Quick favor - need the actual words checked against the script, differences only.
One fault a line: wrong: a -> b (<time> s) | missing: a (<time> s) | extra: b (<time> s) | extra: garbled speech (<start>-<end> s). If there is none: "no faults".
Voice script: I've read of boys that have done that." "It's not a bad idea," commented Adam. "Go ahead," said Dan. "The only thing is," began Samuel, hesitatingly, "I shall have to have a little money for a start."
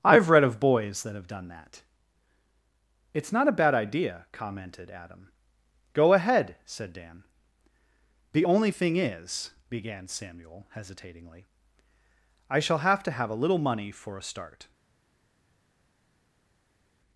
no faults